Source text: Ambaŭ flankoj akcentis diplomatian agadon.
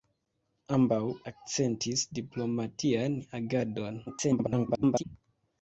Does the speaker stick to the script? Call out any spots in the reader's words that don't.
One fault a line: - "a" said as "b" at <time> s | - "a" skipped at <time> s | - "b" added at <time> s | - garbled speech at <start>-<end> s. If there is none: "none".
- "flankoj" skipped at 1.0 s
- garbled speech at 4.1-5.0 s